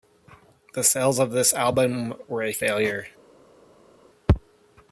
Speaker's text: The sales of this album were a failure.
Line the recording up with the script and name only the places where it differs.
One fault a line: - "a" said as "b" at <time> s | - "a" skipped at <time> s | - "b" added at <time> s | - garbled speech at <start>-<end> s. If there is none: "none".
none